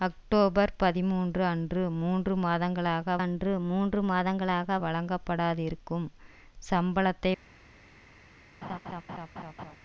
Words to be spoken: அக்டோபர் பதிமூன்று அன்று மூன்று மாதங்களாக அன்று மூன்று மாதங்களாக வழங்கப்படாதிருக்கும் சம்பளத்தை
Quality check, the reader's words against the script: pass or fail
pass